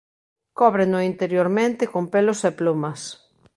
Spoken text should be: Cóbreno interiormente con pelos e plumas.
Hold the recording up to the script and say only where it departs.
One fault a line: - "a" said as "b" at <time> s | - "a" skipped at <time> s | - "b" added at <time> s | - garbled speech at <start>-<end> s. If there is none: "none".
none